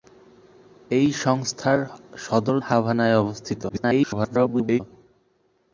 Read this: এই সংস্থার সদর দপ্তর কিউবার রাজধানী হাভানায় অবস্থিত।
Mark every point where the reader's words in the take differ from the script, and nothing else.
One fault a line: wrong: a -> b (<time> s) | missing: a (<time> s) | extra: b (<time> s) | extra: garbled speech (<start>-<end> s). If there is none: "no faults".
missing: দপ্তর কিউবার রাজধানী (2.6 s)
extra: garbled speech (3.7-4.8 s)